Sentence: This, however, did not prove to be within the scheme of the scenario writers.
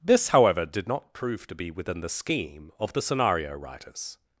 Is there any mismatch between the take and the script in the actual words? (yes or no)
no